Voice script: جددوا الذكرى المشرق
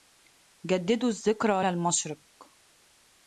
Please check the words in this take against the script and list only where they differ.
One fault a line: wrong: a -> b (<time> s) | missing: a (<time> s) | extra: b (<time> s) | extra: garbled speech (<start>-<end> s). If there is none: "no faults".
no faults